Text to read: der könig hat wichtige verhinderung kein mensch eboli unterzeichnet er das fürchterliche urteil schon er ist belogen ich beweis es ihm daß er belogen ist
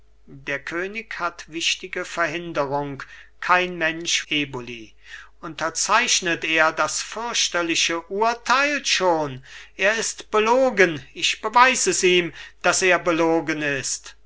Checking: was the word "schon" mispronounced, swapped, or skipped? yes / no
no